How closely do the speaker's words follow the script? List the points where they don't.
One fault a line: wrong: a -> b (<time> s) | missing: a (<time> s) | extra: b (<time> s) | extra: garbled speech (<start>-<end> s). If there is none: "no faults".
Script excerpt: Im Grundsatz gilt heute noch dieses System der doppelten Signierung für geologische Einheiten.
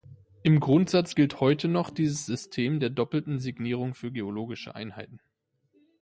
no faults